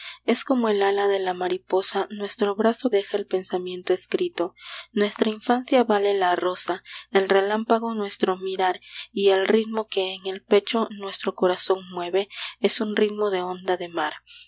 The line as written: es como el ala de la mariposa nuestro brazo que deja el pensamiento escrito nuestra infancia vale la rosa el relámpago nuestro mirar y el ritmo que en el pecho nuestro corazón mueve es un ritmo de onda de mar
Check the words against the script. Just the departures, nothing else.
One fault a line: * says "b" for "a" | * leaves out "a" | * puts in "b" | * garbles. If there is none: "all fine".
* leaves out "que"